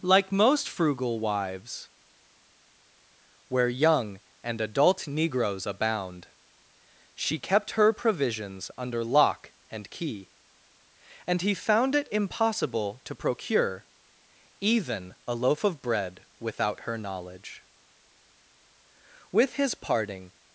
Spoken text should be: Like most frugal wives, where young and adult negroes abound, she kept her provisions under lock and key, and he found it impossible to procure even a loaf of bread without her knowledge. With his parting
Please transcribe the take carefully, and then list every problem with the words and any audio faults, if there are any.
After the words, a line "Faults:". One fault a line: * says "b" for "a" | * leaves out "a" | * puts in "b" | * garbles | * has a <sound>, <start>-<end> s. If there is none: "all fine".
Like most frugal wives, where young and adult negroes abound, she kept her provisions under lock and key, and he found it impossible to procure even a loaf of bread without her knowledge. With his parting
Faults:
all fine